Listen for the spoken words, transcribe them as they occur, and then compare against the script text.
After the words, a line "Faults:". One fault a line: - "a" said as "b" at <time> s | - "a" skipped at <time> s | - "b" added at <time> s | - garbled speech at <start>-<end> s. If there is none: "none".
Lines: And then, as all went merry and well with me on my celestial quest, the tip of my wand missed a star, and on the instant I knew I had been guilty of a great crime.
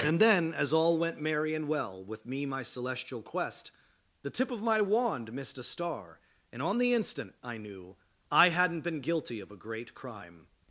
And then, as all went merry and well with me my celestial quest, the tip of my wand missed a star, and on the instant I knew I hadn't been guilty of a great crime.
Faults:
- "on" skipped at 2.5 s
- "had" said as "hadn't" at 8.5 s